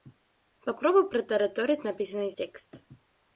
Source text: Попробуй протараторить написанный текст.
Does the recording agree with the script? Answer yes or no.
yes